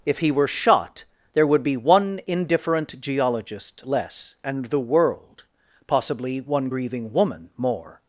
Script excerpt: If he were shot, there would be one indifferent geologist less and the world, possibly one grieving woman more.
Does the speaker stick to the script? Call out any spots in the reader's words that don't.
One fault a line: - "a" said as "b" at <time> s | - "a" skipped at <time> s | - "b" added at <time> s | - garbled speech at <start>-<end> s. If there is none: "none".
none